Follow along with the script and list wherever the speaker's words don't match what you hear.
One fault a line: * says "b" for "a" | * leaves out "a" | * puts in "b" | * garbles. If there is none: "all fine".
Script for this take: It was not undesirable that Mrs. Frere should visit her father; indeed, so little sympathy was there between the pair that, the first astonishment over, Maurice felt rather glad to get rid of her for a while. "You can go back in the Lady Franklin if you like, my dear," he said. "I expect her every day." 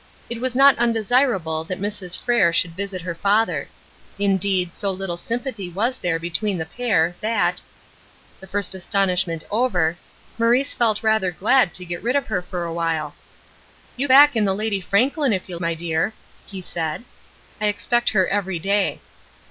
* leaves out "can go"
* leaves out "like"